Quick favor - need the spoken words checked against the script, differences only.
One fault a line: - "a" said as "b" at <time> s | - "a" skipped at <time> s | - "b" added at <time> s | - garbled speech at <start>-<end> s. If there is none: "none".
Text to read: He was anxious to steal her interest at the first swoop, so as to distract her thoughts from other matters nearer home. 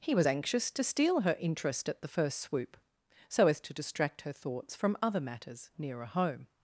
none